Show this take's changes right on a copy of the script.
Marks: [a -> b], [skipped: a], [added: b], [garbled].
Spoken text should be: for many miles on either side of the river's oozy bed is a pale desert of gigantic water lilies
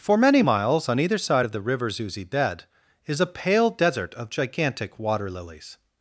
for many miles on either side of the river's oozy bed is a pale desert of gigantic water lilies